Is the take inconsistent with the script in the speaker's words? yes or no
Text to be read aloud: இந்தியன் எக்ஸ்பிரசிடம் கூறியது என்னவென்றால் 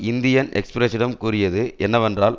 no